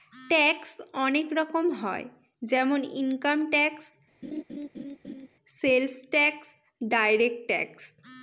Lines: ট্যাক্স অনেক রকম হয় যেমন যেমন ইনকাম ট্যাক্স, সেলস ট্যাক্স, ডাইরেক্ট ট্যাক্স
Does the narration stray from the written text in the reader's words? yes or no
yes